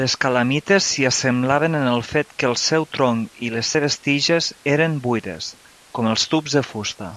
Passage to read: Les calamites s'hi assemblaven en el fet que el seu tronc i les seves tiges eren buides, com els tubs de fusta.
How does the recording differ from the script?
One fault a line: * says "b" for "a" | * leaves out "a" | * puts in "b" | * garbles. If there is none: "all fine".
all fine